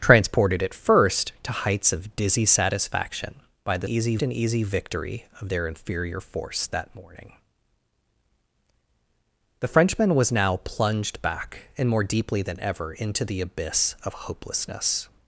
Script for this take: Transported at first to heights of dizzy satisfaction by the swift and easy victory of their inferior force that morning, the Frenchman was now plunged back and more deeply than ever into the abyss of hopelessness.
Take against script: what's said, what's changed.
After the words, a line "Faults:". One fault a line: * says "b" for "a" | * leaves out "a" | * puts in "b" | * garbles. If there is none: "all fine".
Transported at first to heights of dizzy satisfaction by the easy and easy victory of their inferior force that morning, the Frenchman was now plunged back and more deeply than ever into the abyss of hopelessness.
Faults:
* says "easy" for "swift"